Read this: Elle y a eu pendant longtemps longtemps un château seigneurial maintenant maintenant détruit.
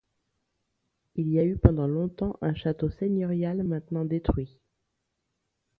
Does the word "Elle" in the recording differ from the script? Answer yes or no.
yes